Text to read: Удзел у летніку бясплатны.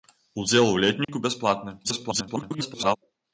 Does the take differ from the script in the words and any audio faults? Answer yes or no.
yes